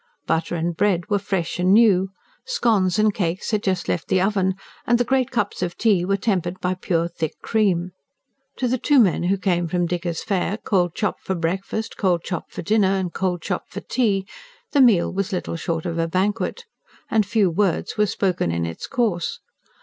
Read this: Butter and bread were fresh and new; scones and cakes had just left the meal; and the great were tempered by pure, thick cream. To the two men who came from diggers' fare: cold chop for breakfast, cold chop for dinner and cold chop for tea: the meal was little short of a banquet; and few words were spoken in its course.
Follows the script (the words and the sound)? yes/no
no